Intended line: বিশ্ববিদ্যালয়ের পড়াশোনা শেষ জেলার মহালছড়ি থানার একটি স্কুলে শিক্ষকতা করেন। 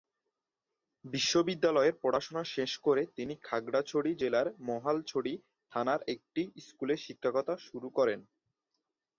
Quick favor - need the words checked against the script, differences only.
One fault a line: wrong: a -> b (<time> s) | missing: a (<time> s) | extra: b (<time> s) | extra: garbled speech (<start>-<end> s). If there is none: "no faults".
extra: করে তিনি খাগড়াছড়ি (2.8 s)
extra: শুরু (7.7 s)